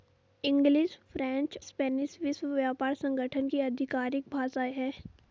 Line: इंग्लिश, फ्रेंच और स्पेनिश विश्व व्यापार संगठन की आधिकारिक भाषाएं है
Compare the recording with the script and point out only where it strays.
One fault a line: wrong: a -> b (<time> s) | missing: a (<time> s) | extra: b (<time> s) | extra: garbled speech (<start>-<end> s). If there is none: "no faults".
missing: और (1.6 s)